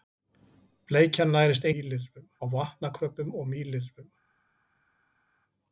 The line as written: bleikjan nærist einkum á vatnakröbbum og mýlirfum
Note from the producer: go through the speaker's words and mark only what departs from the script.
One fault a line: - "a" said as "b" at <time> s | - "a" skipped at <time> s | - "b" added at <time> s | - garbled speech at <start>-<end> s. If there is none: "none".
- "einkum" said as "mýlirfum" at 1.7 s